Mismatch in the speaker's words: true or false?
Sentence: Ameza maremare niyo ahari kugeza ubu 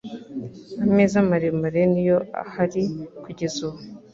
false